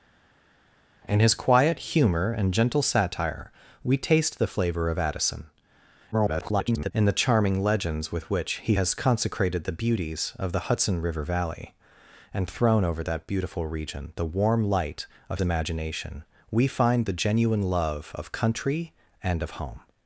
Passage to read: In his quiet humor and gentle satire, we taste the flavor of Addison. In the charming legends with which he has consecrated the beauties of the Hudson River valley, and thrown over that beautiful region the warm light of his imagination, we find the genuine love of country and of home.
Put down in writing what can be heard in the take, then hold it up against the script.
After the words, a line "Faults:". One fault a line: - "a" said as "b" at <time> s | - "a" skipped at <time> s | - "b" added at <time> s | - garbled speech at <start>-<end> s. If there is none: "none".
In his quiet humor and gentle satire, we taste the flavor of Addison. [garbled] In the charming legends with which he has consecrated the beauties of the Hudson River valley, and thrown over that beautiful region the warm light of imagination, we find the genuine love of country and of home.
Faults:
- garbled speech at 6.1-6.9 s
- "his" skipped at 15.4 s